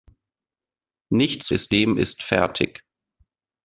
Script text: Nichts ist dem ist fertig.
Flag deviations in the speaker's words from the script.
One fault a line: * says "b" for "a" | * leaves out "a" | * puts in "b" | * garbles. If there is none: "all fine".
all fine